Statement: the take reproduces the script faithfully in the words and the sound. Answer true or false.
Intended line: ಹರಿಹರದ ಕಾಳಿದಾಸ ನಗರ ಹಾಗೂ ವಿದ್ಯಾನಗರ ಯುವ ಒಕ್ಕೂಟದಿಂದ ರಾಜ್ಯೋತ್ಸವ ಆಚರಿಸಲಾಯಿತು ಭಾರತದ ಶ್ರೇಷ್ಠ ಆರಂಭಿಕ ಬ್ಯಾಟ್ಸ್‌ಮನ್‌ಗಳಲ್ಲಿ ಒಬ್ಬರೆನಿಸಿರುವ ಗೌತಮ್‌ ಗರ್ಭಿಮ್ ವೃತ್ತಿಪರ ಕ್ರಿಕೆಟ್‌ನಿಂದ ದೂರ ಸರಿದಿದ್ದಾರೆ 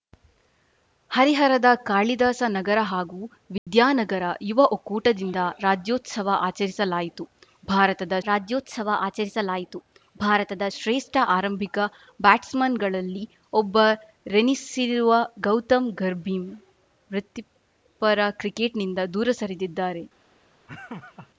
false